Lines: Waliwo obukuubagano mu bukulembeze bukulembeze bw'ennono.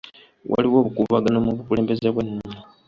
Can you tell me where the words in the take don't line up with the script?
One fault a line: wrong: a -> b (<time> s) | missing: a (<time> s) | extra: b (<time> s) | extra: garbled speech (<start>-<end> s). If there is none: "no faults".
missing: bukulembeze (2.1 s)